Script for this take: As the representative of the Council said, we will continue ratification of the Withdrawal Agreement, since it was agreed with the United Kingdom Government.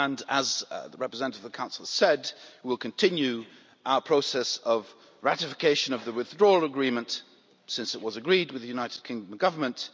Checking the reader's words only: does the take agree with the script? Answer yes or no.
no